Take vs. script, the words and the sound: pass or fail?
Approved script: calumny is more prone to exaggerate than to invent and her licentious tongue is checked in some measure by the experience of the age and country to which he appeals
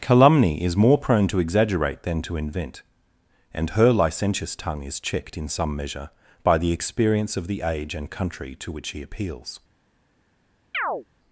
fail